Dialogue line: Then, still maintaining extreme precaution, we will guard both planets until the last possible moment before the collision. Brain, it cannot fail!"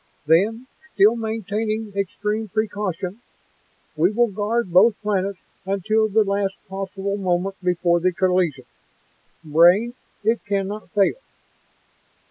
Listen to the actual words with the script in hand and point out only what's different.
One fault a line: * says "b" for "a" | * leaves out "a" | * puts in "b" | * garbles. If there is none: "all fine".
all fine